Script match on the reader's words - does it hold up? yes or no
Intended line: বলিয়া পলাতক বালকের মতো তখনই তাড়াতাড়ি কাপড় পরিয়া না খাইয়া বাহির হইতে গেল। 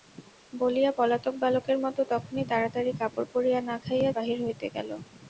yes